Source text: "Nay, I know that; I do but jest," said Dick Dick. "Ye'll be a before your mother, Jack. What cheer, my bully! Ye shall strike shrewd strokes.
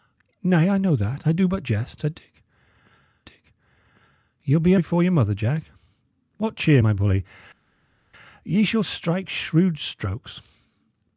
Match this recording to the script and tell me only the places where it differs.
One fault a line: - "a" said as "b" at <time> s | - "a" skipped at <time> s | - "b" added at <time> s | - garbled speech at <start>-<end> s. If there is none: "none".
none